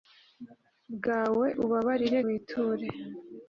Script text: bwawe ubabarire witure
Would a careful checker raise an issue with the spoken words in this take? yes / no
no